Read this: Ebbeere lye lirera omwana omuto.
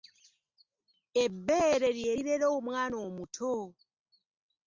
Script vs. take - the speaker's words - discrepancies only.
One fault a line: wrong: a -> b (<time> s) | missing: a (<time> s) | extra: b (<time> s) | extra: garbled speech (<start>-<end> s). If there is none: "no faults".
no faults